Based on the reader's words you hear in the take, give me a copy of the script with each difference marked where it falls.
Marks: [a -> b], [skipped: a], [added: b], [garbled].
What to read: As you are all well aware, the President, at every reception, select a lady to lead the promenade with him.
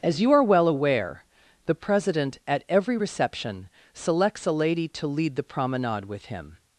As you are [skipped: all] well aware, the President, at every reception, [select -> selects] a lady to lead the promenade with him.